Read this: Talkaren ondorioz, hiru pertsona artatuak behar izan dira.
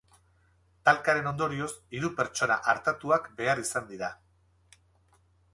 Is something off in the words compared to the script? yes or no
no